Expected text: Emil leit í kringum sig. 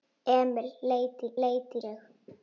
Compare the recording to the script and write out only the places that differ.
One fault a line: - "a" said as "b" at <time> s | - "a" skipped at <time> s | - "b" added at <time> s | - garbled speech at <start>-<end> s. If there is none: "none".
- "kringum" said as "leit" at 1.5 s